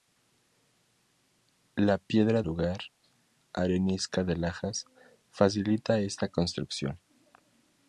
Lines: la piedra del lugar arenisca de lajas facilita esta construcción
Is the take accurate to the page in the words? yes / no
no